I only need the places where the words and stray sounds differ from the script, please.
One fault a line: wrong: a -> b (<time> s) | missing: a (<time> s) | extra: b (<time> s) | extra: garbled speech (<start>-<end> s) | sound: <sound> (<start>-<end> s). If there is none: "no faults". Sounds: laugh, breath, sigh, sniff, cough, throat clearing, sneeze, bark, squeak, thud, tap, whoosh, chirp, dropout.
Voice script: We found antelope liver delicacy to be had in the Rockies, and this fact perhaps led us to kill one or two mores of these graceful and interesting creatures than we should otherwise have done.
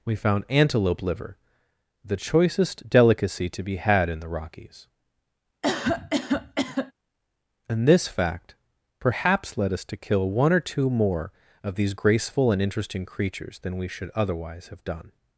extra: the choicest (2.0 s)
sound: cough (5.6-6.9 s)
wrong: mores -> more (10.9 s)